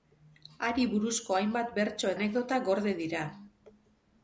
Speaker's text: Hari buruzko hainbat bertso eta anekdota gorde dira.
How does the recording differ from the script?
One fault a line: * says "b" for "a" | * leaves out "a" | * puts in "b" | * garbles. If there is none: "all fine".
* leaves out "eta"